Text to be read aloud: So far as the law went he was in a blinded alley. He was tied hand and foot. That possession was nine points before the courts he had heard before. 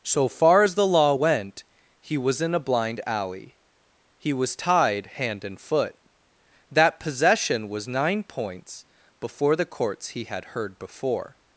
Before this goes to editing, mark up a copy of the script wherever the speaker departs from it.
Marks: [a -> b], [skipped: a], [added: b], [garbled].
So far as the law went he was in a [blinded -> blind] alley. He was tied hand and foot. That possession was nine points before the courts he had heard before.